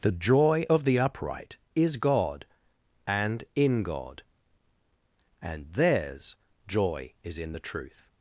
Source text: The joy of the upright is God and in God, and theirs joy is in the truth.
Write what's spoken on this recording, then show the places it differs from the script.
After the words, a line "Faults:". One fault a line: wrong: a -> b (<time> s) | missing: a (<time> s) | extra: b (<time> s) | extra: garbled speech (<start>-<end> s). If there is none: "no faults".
The joy of the upright is God and in God, and theirs joy is in the truth.
Faults:
no faults